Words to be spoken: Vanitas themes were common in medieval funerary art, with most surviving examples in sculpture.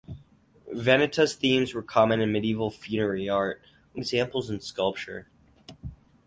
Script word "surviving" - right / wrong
wrong